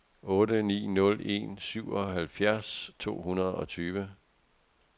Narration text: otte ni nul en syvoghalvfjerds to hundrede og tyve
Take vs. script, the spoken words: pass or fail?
pass